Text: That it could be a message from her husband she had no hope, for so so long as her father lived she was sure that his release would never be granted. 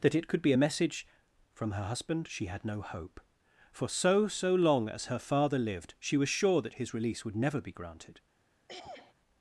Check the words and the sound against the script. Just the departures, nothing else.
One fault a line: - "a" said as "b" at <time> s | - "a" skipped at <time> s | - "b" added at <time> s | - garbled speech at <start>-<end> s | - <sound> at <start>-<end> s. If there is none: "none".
- throat clearing at 8.7-9.1 s